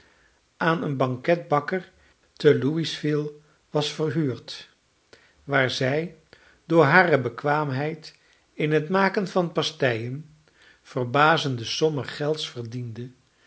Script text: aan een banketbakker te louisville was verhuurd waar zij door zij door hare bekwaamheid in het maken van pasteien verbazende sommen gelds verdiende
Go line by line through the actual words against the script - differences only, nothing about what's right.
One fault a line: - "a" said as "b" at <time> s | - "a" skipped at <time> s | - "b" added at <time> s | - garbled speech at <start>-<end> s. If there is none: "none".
- "zij door" skipped at 6.8 s